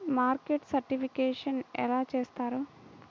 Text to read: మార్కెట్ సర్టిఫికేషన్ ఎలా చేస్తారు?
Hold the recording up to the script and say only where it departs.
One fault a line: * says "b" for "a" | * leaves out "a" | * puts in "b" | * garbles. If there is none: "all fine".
all fine